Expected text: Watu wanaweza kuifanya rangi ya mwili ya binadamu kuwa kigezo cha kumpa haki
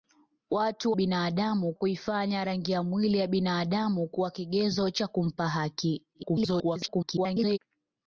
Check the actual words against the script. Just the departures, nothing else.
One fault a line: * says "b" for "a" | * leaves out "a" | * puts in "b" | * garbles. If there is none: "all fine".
* says "binadamu" for "wanaweza"
* garbles